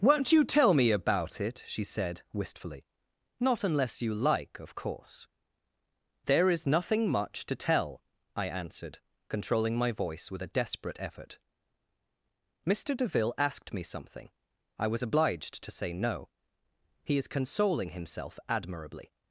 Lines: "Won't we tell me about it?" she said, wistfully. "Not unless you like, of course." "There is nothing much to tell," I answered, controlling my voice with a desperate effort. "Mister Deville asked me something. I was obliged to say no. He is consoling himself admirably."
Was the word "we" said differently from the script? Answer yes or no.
yes